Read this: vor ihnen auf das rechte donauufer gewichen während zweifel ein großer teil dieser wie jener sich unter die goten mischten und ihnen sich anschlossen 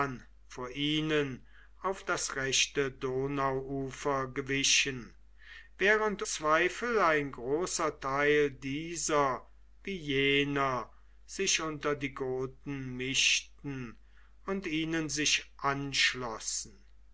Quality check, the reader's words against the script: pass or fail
pass